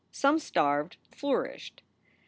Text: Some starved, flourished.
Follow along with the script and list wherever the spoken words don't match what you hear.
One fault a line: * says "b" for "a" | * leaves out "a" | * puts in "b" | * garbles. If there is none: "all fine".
all fine